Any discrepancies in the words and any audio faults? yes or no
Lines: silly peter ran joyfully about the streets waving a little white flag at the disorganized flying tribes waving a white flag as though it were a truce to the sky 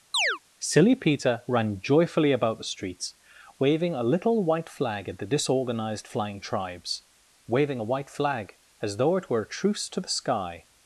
yes